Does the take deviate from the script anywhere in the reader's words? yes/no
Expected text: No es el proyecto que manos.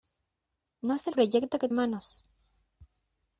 no